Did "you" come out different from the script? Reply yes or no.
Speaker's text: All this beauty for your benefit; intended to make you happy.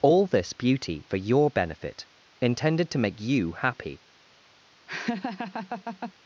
no